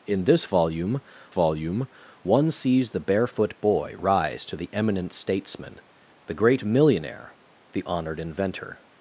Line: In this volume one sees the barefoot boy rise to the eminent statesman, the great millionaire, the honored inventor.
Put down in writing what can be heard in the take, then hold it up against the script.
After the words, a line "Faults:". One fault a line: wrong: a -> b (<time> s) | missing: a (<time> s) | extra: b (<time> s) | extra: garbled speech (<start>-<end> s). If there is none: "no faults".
In this volume volume one sees the barefoot boy rise to the eminent statesman, the great millionaire, the honored inventor.
Faults:
extra: volume (1.3 s)